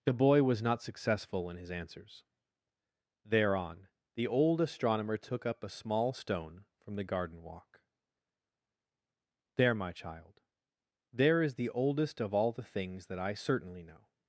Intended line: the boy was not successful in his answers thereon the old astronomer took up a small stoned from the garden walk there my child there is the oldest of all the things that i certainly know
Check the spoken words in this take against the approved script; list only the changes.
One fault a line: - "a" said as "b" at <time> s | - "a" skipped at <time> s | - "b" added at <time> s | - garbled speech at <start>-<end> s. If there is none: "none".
- "stoned" said as "stone" at 6.1 s